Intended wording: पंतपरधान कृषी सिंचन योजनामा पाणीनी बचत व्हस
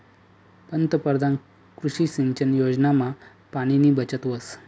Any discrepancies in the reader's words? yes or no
no